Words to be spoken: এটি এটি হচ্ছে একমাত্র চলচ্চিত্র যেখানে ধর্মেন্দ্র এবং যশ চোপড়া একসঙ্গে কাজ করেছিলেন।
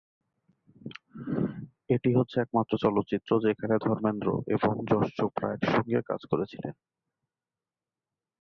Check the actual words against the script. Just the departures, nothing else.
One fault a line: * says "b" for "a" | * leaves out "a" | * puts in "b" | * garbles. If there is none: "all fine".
* leaves out "এটি"